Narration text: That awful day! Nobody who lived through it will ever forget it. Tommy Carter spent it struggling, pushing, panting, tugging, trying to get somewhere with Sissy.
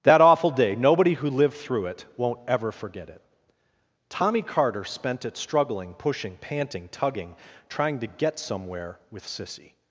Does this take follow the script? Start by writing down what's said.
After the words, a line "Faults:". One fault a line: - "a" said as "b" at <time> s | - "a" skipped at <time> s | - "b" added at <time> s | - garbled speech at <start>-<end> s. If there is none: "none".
That awful day! Nobody who lived through it won't ever forget it. Tommy Carter spent it struggling, pushing, panting, tugging, trying to get somewhere with Sissy.
Faults:
- "will" said as "won't" at 2.2 s